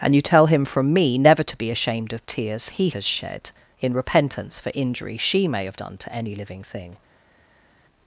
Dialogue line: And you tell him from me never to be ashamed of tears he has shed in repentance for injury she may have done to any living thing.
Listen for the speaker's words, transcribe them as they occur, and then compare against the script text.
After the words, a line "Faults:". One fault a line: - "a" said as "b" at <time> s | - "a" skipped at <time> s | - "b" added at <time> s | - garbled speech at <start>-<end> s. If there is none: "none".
And you tell him from me never to be ashamed of tears he has shed in repentance for injury she may have done to any living thing.
Faults:
none